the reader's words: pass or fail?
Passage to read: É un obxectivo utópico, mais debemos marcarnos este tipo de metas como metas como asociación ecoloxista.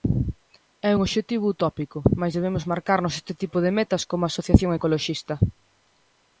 fail